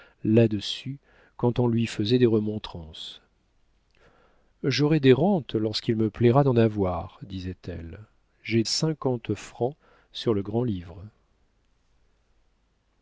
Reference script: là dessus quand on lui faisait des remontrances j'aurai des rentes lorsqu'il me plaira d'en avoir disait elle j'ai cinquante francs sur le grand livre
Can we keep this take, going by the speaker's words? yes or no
yes